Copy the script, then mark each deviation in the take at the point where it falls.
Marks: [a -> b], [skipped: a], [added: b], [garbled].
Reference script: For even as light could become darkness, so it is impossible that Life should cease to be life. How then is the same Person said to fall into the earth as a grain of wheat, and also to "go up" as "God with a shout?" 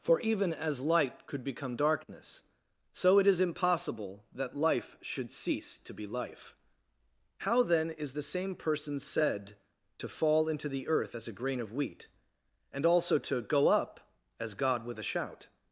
For even as light could become darkness, so it is impossible that Life should cease to be life. How then is the same Person said to fall into the earth as a grain of wheat, and also to "go up" as "God with a shout?"